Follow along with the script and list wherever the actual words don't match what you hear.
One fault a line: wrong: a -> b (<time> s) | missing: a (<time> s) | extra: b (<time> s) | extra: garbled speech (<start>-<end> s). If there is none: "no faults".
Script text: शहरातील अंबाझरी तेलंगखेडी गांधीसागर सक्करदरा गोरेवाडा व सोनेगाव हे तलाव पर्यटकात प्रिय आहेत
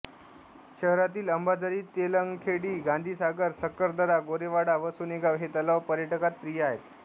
no faults